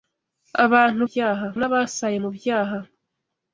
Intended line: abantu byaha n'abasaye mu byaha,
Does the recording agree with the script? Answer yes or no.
yes